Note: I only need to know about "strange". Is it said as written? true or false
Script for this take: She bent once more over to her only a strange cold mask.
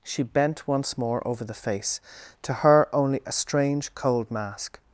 true